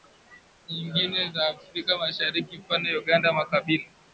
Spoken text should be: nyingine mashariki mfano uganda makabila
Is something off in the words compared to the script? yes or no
yes